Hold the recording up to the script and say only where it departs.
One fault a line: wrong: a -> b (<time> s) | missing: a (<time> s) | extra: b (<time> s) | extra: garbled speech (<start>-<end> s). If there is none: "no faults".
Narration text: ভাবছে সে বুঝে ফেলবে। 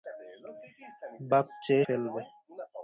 missing: সে বুঝে (1.8 s)